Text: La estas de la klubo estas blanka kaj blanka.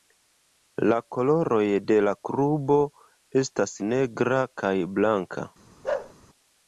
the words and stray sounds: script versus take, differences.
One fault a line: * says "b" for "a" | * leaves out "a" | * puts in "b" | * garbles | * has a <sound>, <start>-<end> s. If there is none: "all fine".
* says "koloroj" for "estas"
* says "negra" for "blanka"
* has a bark, 5.8-6.1 s